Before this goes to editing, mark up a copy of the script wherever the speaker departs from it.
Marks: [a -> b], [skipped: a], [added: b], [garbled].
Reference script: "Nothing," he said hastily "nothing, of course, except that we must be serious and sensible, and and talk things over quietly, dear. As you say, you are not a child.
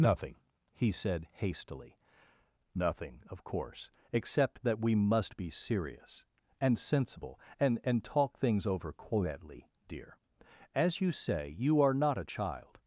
"Nothing," he said hastily "nothing, of course, except that we must be serious and sensible, and and talk things over quietly, dear. As you say, you are not a child.